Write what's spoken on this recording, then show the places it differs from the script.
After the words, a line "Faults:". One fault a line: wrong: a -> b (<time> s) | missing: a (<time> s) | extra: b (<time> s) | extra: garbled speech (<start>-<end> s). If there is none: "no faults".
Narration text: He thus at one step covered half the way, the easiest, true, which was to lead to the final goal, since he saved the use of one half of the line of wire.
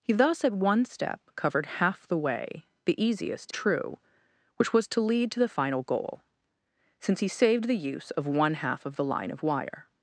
He thus at one step covered half the way, the easiest, true, which was to lead to the final goal, since he saved the use of one half of the line of wire.
Faults:
no faults